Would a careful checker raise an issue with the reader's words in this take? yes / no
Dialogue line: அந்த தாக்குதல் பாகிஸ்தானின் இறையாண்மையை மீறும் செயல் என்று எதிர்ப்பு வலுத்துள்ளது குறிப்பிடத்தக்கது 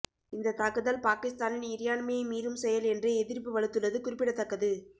yes